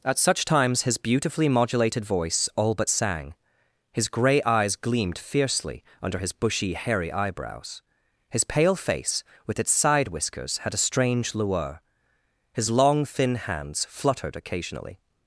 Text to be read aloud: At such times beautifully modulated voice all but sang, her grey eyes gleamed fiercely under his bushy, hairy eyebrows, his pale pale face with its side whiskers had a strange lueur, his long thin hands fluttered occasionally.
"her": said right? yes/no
no